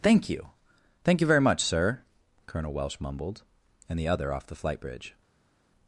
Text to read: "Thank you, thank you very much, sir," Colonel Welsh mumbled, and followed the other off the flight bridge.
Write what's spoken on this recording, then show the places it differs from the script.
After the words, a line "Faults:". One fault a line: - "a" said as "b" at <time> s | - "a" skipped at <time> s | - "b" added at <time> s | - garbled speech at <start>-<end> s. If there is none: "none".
"Thank you, thank you very much, sir," Colonel Welsh mumbled, and the other off the flight bridge.
Faults:
- "followed" skipped at 4.0 s